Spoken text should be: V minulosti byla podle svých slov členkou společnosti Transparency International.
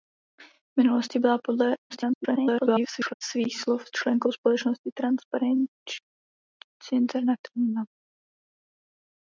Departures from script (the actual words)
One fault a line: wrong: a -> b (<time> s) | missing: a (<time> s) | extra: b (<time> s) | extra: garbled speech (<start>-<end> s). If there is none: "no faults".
extra: garbled speech (1.9-3.1 s)